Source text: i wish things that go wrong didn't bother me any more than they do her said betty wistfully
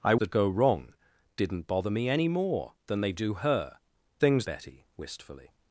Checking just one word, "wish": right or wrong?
wrong